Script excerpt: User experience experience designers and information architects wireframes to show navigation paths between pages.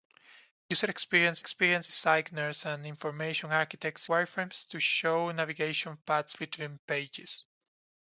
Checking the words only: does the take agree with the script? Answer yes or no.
yes